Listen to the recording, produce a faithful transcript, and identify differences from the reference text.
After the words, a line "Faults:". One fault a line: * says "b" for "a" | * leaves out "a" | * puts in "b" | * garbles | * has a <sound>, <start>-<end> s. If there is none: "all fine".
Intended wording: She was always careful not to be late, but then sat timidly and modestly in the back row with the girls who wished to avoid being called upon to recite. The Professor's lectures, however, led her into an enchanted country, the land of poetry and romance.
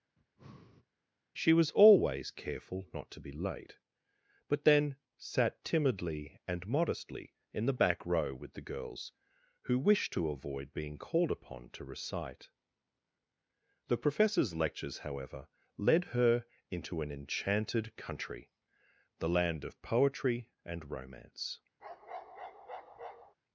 She was always careful not to be late, but then sat timidly and modestly in the back row with the girls who wished to avoid being called upon to recite. The Professor's lectures, however, led her into an enchanted country, the land of poetry and romance.
Faults:
* has a breath, 0.2-0.9 s
* has a bark, 21.8-23.3 s